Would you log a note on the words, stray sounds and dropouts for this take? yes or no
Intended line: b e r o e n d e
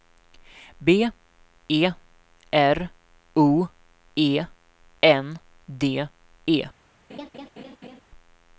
yes